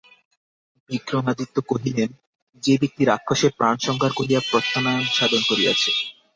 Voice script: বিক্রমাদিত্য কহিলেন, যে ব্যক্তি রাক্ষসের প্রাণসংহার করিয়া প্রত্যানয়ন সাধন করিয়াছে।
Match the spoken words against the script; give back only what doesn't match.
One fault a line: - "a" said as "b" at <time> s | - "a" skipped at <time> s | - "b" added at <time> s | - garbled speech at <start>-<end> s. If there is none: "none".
none